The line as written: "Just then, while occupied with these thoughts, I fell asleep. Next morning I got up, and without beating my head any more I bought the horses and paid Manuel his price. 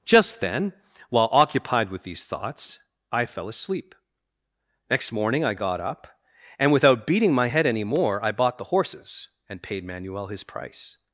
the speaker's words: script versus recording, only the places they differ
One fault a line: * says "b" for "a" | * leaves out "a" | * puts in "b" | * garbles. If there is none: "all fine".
all fine